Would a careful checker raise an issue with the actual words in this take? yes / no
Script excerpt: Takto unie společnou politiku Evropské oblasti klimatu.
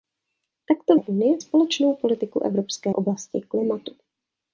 no